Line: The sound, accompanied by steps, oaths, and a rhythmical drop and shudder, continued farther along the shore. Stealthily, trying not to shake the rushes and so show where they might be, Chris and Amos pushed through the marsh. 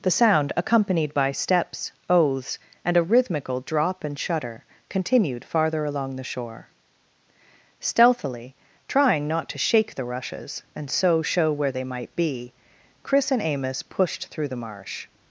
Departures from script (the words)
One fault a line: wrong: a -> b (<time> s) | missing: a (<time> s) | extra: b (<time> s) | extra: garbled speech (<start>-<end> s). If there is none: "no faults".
no faults